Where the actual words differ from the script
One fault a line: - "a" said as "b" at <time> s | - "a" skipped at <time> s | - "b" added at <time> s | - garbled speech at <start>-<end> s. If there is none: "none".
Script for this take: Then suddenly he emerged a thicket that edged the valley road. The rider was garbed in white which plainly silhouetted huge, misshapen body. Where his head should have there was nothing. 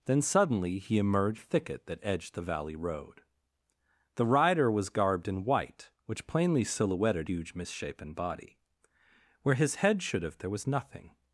none